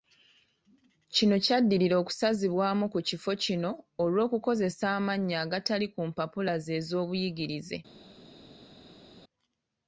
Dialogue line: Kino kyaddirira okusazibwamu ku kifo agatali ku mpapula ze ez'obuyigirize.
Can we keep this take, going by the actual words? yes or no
no